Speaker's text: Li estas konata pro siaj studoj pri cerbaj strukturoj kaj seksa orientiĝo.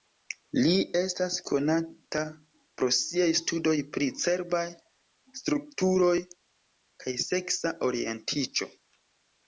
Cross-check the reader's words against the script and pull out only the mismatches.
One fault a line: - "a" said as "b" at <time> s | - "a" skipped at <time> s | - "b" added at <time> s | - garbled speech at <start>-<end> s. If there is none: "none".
none